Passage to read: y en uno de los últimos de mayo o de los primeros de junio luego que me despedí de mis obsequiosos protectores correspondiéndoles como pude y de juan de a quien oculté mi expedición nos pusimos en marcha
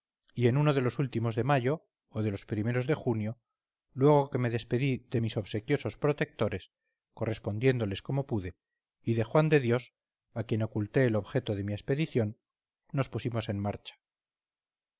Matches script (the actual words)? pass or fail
fail